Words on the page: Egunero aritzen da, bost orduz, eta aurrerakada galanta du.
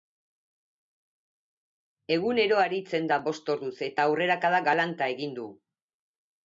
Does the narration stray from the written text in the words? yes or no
yes